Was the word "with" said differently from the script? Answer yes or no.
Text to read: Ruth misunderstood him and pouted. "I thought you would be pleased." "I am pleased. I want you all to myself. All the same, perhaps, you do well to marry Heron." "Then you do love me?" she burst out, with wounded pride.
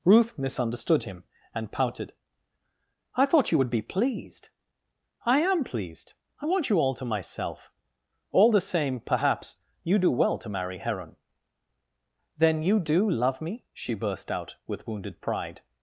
no